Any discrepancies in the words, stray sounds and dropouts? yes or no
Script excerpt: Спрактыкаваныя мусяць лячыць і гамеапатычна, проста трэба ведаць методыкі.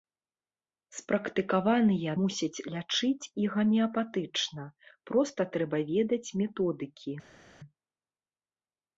no